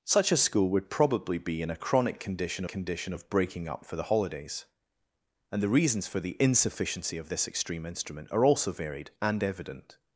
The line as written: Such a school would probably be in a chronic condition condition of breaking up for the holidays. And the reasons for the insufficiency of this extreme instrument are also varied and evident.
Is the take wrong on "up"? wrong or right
right